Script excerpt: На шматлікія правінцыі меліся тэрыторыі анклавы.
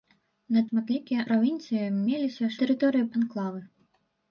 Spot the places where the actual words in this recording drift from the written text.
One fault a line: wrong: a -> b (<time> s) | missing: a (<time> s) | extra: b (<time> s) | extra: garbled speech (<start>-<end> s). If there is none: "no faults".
no faults